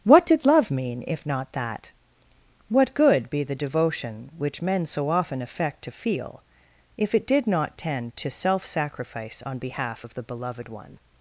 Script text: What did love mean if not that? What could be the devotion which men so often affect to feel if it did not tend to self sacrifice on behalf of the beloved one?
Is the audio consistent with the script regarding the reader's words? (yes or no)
no